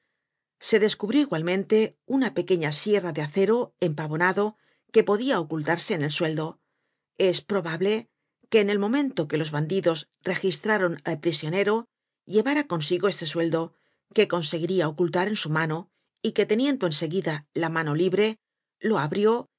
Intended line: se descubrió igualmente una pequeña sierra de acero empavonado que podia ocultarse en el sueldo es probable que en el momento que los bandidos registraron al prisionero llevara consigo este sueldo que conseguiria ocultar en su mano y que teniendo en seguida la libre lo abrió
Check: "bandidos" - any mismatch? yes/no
no